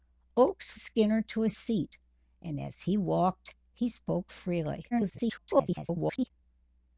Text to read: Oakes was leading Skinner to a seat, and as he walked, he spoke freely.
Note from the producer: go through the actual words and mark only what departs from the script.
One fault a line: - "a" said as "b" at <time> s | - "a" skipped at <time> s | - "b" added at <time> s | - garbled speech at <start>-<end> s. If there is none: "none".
- "was leading" skipped at 0.8 s
- garbled speech at 4.9-6.3 s